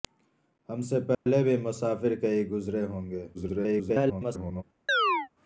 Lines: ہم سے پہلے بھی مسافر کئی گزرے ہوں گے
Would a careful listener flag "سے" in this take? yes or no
no